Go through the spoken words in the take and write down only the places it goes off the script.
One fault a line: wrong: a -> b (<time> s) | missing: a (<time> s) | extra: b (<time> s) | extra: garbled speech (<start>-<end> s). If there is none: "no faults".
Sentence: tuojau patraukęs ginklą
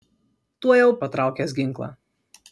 no faults